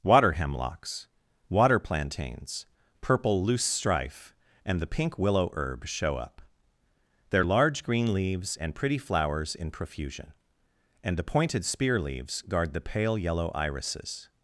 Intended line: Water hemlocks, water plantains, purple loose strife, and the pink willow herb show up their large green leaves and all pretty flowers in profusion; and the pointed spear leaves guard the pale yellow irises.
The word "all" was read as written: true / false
false